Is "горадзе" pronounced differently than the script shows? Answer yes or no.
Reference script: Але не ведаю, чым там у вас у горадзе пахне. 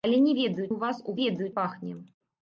yes